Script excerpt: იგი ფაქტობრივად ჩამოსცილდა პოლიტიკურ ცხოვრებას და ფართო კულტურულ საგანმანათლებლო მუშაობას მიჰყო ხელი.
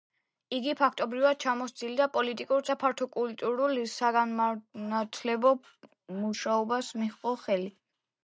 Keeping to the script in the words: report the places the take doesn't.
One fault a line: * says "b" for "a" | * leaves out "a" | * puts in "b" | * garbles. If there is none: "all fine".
* leaves out "ცხოვრებას"